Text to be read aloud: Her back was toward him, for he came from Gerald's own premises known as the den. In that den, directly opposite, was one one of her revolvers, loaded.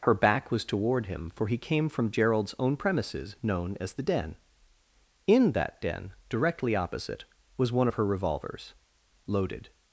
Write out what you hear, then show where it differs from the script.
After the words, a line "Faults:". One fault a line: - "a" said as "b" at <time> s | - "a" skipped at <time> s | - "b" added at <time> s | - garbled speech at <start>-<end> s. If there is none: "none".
Her back was toward him, for he came from Gerald's own premises known as the den. In that den, directly opposite, was one of her revolvers, loaded.
Faults:
- "one" skipped at 7.9 s